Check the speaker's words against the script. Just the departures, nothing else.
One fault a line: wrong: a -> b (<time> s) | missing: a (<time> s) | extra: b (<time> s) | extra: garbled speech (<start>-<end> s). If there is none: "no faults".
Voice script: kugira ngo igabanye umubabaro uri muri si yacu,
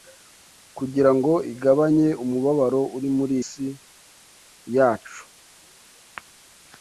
no faults